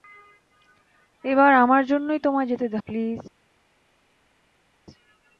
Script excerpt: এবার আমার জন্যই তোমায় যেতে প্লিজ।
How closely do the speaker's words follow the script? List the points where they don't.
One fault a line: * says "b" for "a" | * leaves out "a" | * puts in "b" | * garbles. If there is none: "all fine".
all fine